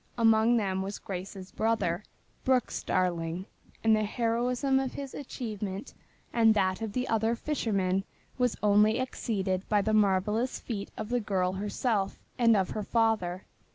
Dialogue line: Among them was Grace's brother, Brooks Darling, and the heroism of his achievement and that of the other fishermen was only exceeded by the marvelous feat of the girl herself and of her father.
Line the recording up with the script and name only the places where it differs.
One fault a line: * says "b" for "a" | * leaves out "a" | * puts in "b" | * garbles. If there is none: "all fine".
all fine